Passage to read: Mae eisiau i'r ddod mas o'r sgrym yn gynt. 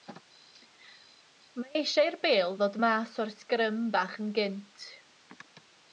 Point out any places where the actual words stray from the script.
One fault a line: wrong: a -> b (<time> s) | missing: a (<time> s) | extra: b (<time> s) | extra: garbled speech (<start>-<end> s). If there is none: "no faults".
extra: bêl (2.2 s)
extra: bach (4.0 s)